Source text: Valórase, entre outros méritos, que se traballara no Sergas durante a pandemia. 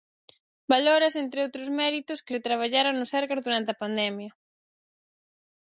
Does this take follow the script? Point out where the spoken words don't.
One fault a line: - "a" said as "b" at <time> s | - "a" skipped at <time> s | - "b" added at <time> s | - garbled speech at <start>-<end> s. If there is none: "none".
none